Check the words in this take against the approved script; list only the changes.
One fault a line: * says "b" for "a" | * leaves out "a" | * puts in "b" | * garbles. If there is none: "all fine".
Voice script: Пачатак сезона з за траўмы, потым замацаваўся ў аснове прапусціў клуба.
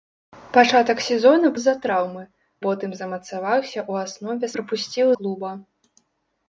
all fine